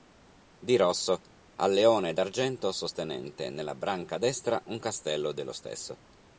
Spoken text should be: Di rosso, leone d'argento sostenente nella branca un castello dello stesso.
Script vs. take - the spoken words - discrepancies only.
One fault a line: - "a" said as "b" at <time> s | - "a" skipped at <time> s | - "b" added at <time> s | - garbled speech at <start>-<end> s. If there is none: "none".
- "al" added at 1.6 s
- "destra" added at 4.2 s